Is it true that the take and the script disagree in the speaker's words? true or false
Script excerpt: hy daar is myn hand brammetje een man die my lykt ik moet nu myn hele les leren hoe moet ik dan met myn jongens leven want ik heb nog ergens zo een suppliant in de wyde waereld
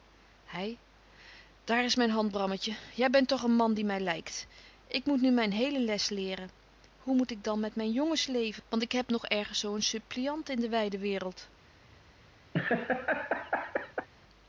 true